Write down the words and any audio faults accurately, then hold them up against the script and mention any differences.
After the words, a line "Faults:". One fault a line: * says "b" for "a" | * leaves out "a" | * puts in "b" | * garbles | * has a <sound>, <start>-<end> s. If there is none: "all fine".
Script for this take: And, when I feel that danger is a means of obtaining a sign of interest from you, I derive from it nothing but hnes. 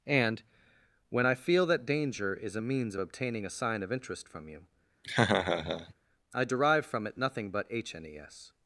And, when I feel that danger is a means of obtaining a sign of interest from you, I derive from it nothing but hnes.
Faults:
* has a laugh, 5.0-5.9 s